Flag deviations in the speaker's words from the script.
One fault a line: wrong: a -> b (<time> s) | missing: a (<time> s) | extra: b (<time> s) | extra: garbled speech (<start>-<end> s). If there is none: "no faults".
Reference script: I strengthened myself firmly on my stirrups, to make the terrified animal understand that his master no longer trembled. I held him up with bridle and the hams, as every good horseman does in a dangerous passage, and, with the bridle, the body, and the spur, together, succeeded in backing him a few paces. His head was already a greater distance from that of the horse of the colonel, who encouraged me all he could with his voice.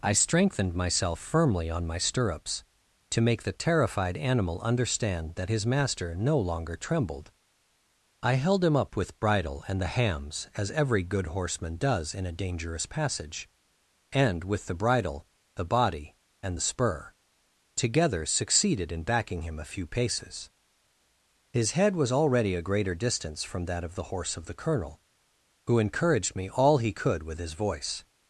no faults